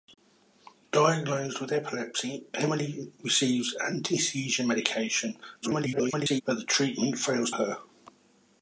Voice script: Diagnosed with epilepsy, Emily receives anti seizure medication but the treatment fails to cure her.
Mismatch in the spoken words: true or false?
true